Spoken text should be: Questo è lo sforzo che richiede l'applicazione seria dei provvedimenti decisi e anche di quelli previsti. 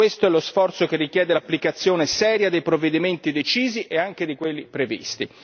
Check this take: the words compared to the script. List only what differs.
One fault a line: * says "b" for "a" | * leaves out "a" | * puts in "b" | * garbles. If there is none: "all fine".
all fine